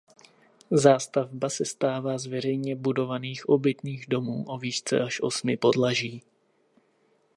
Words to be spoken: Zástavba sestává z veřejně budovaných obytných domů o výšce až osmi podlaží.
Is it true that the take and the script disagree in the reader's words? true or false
false